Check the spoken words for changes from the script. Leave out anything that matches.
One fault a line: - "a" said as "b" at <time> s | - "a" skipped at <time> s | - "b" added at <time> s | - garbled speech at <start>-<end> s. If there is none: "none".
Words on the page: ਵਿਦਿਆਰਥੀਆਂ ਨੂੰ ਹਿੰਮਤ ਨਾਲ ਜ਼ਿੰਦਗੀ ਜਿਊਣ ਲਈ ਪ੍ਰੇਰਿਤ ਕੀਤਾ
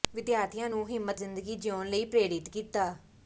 - "ਨਾਲ" skipped at 1.2 s